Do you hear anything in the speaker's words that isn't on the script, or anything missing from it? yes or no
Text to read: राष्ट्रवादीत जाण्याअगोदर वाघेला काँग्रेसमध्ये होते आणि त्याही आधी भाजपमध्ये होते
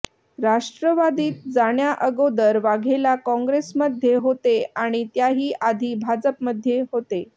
no